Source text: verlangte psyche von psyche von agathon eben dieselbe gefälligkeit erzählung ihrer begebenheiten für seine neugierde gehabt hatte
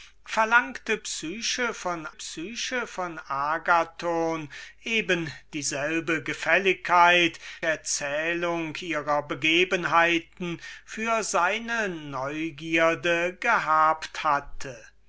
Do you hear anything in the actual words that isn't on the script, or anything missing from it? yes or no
no